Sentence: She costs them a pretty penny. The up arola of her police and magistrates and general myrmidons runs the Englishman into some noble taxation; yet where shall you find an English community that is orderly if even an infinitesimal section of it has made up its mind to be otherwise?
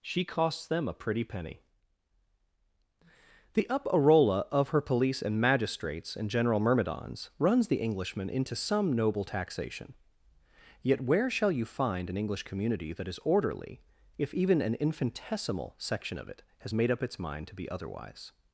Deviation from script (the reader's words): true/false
false